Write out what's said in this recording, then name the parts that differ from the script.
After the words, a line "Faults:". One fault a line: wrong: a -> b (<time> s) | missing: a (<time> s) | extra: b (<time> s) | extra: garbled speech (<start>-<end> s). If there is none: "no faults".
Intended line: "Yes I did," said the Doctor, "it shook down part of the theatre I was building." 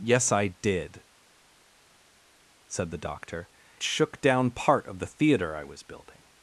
"Yes I did," said the Doctor, "shook down part of the theatre I was building."
Faults:
missing: it (3.5 s)